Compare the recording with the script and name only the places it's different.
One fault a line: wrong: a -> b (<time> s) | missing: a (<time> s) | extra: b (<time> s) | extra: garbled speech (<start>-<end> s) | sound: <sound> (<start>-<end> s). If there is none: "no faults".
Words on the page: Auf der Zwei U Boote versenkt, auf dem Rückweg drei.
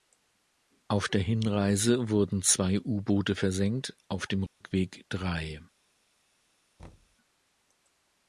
extra: Hinreise wurden (1.2 s)
sound: dropout (4.5-4.6 s)
sound: thud (6.8-7.2 s)